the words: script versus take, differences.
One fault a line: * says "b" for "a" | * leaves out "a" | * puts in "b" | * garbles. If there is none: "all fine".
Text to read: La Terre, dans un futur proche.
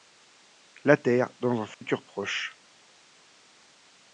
all fine